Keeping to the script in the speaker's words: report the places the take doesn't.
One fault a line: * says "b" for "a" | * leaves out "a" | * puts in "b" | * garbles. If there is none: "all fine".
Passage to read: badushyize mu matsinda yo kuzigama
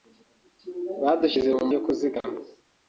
* leaves out "matsinda"